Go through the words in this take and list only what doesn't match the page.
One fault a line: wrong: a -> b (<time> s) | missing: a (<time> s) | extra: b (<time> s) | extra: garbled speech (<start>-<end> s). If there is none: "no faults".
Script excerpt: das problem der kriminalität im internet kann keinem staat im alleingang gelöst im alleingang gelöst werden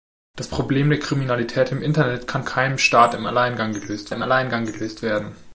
no faults